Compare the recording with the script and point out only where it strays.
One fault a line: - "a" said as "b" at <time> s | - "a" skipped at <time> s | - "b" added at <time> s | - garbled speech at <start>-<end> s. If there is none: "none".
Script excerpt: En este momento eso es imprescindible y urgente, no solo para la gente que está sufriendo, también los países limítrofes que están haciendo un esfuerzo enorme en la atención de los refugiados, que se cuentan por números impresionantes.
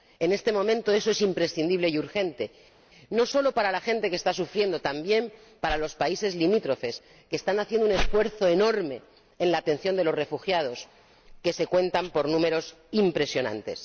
- "para" added at 5.6 s